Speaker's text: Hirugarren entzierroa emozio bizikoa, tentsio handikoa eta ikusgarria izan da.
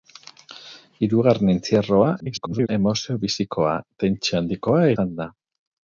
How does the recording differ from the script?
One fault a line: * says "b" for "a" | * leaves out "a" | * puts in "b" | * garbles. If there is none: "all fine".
* garbles
* leaves out "eta ikusgarria"